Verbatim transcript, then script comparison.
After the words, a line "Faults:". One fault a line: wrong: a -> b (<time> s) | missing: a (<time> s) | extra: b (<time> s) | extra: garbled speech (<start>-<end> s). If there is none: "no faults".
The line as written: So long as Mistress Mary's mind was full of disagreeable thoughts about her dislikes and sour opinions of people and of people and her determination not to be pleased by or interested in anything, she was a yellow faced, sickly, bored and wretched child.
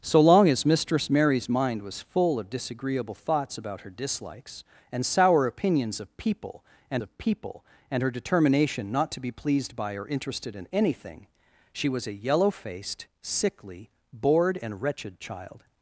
So long as Mistress Mary's mind was full of disagreeable thoughts about her dislikes and sour opinions of people and of people and her determination not to be pleased by or interested in anything, she was a yellow faced, sickly, bored and wretched child.
Faults:
no faults